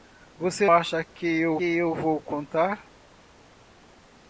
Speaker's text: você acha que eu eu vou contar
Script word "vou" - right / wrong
right